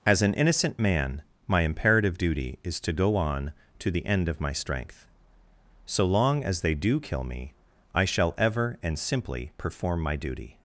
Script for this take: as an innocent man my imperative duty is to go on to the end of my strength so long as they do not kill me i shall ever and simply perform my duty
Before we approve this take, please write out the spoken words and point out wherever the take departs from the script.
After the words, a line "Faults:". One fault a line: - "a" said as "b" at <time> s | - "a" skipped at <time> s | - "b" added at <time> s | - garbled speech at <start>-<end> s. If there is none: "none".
as an innocent man my imperative duty is to go on to the end of my strength so long as they do kill me i shall ever and simply perform my duty
Faults:
- "not" skipped at 7.0 s